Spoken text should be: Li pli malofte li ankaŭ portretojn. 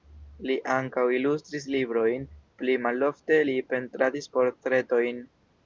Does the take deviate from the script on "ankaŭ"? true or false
true